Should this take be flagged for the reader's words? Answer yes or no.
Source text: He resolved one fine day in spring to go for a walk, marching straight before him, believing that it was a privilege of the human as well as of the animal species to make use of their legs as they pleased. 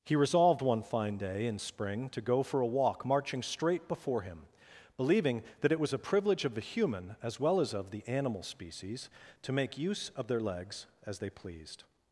no